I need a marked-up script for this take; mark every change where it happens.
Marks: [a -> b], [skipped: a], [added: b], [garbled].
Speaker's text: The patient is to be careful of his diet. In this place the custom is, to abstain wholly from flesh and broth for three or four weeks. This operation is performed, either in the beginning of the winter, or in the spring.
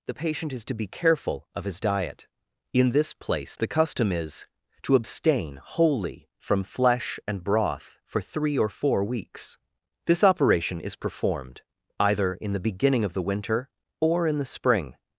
The patient is to be careful of his diet. In this place the custom is, to abstain wholly from flesh and broth for three or four weeks. This operation is performed, either in the beginning of the winter, or in the spring.